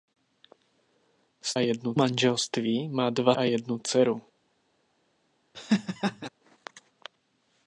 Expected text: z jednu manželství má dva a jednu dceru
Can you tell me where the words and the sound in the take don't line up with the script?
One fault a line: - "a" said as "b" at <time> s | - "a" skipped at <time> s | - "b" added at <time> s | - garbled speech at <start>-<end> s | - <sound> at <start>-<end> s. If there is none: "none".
- laugh at 5.5-6.3 s